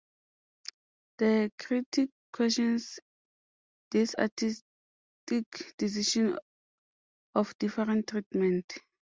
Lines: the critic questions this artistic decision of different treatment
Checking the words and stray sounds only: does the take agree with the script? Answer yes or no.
yes